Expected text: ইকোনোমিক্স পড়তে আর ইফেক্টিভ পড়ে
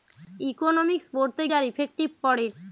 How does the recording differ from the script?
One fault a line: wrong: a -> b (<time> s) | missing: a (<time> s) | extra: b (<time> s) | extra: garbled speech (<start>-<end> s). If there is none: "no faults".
no faults